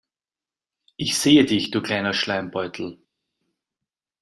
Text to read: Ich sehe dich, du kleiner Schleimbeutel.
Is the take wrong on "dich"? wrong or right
right